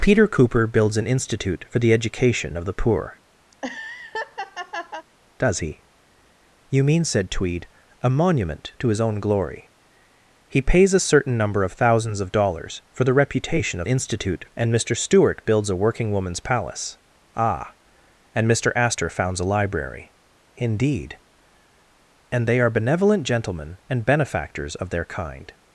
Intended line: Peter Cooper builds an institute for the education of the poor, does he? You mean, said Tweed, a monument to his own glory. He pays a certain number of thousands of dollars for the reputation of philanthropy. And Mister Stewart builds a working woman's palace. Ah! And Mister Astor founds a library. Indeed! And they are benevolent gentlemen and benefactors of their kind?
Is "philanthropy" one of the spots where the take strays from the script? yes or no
yes